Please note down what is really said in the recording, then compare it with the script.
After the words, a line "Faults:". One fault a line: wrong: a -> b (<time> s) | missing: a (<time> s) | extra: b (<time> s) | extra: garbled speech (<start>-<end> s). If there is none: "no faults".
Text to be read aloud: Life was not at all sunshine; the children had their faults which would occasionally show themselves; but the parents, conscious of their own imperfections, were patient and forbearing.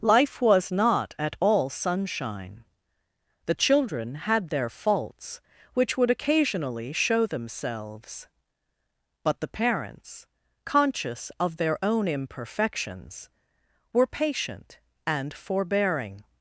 Life was not at all sunshine; the children had their faults which would occasionally show themselves; but the parents, conscious of their own imperfections, were patient and forbearing.
Faults:
no faults